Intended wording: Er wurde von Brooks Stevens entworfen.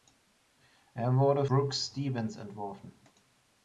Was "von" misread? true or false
true